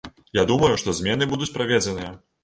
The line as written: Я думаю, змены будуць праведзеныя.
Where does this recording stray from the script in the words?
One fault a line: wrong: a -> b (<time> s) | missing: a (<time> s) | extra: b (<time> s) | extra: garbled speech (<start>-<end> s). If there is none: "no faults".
extra: што (0.8 s)